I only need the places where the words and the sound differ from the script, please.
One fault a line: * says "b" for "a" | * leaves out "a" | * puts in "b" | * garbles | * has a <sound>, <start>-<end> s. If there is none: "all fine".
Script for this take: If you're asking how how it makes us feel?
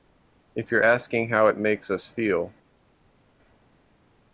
* leaves out "how"